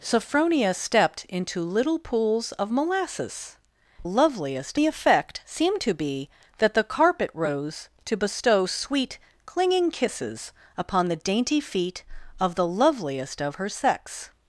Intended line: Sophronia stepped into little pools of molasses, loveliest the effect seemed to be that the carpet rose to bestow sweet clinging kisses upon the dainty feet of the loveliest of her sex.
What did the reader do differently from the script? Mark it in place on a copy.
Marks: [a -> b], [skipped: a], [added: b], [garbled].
Sophronia stepped into little pools of molasses, loveliest the effect seemed to be that the carpet rose to bestow sweet clinging kisses upon the dainty feet of the loveliest of her sex.